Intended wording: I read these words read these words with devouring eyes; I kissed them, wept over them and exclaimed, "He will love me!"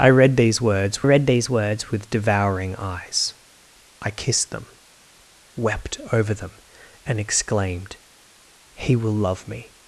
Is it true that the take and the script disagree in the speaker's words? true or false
false